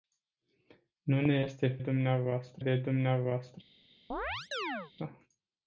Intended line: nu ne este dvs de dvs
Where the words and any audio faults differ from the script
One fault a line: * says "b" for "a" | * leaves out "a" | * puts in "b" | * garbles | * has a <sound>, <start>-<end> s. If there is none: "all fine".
* has a chirp, 4.1-4.9 s